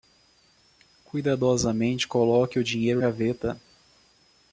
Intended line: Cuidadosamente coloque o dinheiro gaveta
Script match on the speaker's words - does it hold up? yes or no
yes